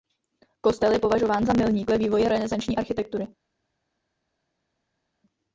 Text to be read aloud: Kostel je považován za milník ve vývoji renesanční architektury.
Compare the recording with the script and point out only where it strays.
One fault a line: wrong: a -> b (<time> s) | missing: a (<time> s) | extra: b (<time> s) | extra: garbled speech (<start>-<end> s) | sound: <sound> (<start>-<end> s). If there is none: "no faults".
no faults